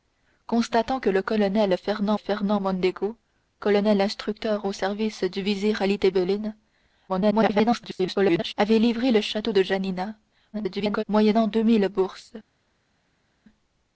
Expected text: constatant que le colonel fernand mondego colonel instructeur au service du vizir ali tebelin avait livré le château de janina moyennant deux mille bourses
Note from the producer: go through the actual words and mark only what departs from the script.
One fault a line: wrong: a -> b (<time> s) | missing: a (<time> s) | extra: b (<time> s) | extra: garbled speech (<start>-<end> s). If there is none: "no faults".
extra: fernand (2.2 s)
extra: garbled speech (7.1-8.5 s)
extra: garbled speech (10.5-11.0 s)